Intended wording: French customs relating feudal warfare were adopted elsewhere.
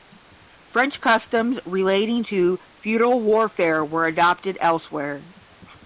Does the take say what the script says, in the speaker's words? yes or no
no